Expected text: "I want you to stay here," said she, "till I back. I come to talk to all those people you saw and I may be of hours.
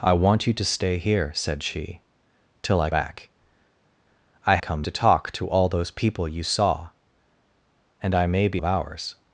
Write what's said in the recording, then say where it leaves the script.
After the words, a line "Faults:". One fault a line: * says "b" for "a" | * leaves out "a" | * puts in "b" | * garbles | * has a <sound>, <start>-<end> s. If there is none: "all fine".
"I want you to stay here," said she, "till I back. I come to talk to all those people you saw and I may be of hours.
Faults:
all fine